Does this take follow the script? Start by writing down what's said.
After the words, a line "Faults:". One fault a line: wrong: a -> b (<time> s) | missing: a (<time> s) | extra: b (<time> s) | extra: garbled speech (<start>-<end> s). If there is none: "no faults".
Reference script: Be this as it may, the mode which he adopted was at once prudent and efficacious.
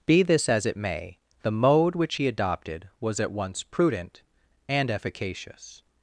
Be this as it may, the mode which he adopted was at once prudent and efficacious.
Faults:
no faults